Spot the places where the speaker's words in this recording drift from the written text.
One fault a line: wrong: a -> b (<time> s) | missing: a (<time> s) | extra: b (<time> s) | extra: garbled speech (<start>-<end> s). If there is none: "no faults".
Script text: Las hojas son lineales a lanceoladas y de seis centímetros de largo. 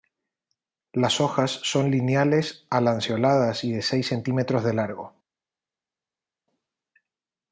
no faults